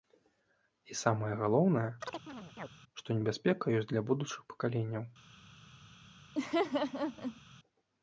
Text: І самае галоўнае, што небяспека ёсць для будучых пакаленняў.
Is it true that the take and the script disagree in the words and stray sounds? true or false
true